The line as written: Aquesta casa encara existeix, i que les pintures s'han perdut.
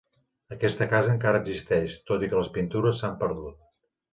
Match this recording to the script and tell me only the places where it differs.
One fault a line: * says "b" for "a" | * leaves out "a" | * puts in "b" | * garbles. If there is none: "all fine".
* puts in "tot"